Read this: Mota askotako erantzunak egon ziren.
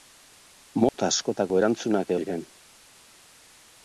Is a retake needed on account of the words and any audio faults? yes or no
yes